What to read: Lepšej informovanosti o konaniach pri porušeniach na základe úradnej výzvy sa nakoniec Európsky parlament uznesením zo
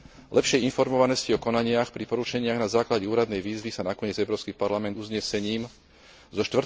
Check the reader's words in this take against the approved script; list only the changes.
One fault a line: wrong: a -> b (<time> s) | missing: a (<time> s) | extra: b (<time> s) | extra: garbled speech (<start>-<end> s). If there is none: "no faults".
no faults